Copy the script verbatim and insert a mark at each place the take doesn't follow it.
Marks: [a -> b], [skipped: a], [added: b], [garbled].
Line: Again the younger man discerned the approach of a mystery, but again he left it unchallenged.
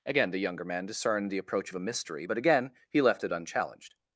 Again the younger man discerned the approach of a mystery, but again he left it unchallenged.